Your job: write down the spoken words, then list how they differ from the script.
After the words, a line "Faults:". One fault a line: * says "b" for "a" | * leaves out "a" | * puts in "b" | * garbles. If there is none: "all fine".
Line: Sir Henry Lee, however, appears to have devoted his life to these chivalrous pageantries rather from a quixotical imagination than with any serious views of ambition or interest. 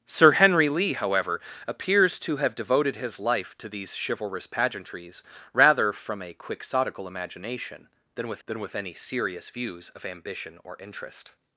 Sir Henry Lee, however, appears to have devoted his life to these chivalrous pageantries rather from a quixotical imagination than with than with any serious views of ambition or interest.
Faults:
* puts in "than with"